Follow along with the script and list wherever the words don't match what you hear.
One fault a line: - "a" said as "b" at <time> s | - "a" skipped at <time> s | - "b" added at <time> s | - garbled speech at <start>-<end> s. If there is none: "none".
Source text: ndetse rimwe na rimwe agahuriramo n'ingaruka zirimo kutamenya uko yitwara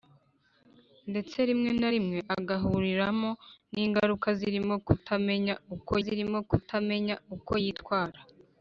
- "zirimo kutamenya uko" added at 6.0 s